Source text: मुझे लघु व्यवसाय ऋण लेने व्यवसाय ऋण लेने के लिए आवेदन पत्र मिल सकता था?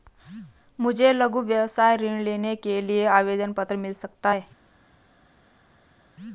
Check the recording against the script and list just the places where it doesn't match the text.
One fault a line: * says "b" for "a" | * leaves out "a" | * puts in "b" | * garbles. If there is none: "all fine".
* leaves out "व्यवसाय ऋण लेने"
* says "है" for "था"